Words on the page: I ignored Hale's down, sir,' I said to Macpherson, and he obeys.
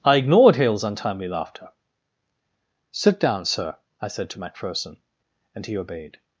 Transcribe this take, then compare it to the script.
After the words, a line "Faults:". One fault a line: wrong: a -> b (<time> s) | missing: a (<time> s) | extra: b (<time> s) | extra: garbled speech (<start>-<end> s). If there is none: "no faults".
I ignored Hale's untimely laughter. 'Sit down, sir,' I said to Macpherson, and he obeyed.
Faults:
extra: untimely laughter Sit (0.8 s)
wrong: obeys -> obeyed (5.8 s)